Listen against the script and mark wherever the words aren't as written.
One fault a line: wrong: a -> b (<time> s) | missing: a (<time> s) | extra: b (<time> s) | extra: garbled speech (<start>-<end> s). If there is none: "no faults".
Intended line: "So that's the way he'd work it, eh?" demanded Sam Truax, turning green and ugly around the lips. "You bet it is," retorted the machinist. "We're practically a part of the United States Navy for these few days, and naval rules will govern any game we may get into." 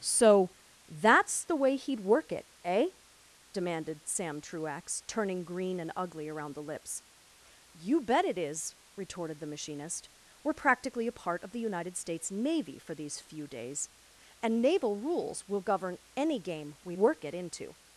wrong: may -> work (16.9 s)